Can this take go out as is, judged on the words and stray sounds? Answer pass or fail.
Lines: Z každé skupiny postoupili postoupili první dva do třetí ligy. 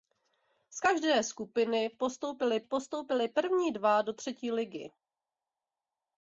pass